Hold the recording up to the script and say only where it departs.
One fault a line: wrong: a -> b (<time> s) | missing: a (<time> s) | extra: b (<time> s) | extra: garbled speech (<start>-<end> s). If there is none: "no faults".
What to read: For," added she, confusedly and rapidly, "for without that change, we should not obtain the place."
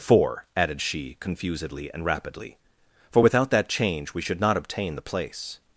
no faults